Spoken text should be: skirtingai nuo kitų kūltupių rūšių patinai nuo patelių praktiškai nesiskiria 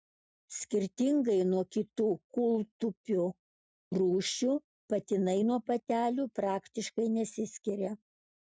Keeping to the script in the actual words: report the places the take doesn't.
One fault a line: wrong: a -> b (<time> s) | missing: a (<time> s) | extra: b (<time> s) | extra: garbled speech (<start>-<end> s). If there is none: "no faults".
no faults